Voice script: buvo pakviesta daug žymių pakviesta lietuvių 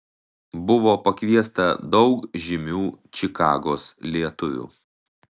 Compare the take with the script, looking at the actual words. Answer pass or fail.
fail